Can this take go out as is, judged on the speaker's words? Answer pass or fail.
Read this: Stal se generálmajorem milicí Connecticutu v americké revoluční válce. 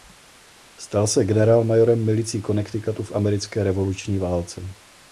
pass